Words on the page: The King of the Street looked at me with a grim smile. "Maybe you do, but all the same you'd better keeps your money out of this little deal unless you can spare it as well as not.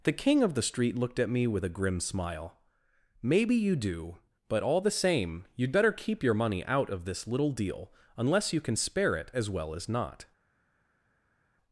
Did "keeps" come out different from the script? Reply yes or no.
yes